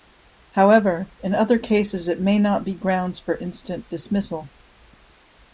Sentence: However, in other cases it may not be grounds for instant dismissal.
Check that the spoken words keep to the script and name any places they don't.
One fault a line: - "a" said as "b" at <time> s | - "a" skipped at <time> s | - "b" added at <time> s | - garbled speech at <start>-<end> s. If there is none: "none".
none